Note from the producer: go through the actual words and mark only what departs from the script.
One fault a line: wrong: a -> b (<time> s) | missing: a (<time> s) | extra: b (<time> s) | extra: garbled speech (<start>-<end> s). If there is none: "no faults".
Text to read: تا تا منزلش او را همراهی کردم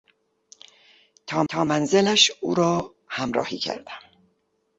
no faults